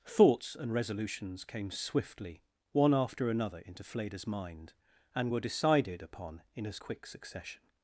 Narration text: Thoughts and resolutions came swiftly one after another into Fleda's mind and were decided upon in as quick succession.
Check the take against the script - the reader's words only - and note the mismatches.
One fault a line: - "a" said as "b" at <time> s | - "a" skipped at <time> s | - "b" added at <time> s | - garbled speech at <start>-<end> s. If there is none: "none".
none